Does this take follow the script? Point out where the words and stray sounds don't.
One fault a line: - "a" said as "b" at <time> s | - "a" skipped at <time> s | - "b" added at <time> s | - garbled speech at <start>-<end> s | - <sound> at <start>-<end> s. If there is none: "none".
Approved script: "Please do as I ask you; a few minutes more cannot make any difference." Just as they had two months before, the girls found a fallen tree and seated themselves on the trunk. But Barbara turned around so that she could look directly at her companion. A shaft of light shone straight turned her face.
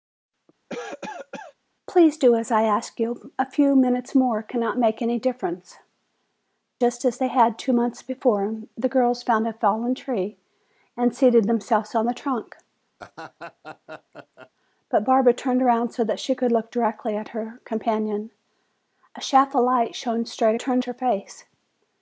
- cough at 0.7-1.5 s
- laugh at 13.0-14.5 s